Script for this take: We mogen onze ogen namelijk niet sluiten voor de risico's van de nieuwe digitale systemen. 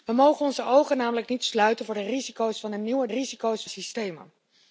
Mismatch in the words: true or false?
true